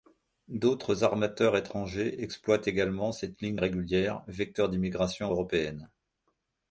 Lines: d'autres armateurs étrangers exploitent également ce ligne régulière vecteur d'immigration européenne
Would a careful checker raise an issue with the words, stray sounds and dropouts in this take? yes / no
yes